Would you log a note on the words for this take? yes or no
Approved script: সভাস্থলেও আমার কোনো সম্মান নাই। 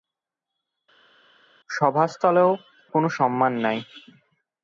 yes